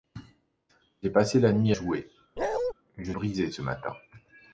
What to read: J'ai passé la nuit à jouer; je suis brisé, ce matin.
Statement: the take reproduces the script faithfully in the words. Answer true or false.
false